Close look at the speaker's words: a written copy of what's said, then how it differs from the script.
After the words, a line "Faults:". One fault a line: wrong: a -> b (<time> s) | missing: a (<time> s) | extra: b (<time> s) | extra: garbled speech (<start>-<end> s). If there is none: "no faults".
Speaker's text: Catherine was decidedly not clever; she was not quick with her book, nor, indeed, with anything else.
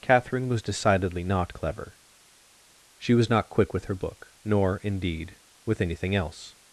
Catherine was decidedly not clever; she was not quick with her book, nor, indeed, with anything else.
Faults:
no faults